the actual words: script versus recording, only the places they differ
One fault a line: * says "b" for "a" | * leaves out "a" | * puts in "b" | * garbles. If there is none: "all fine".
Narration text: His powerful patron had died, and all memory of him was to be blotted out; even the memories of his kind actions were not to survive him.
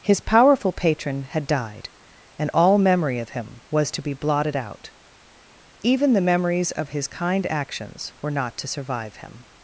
all fine